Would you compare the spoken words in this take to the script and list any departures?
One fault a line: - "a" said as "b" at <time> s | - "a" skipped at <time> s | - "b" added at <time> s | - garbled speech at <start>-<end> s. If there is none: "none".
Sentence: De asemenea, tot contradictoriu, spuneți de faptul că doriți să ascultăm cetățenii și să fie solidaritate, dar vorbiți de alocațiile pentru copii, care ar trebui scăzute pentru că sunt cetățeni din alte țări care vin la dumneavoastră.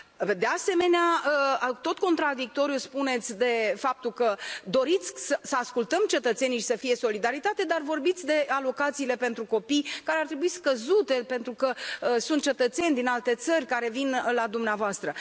none